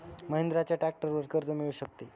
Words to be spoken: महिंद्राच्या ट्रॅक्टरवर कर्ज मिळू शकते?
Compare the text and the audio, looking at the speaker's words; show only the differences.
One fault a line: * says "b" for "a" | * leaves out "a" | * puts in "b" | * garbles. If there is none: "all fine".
all fine